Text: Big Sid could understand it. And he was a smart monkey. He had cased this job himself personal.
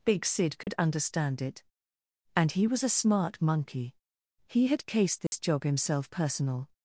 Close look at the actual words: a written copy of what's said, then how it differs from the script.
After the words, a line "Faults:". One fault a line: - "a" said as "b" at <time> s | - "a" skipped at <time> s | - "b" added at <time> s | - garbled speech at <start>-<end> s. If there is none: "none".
Big Sid could understand it. And he was a smart monkey. He had cased this job himself personal.
Faults:
none